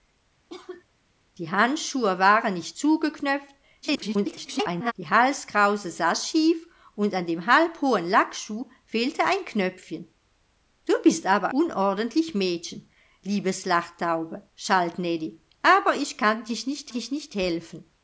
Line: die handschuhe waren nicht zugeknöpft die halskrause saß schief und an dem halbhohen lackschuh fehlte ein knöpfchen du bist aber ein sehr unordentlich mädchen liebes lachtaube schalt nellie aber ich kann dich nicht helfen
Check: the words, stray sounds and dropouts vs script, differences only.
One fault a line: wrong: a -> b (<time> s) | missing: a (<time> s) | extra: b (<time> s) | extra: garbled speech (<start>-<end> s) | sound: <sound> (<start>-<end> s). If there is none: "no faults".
sound: cough (0.5-0.8 s)
extra: garbled speech (3.8-4.9 s)
missing: ein sehr (11.5 s)
extra: dich nicht (16.9 s)